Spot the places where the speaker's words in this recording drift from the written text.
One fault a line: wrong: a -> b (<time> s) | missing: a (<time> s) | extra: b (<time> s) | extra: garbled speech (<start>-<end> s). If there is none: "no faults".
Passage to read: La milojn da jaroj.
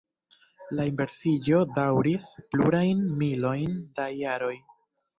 extra: inversiĝo daŭris plurajn (0.9 s)